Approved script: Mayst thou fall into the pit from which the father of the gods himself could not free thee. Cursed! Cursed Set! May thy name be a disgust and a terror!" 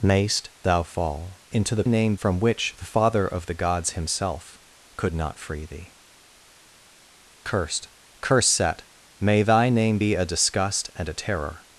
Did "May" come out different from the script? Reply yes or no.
no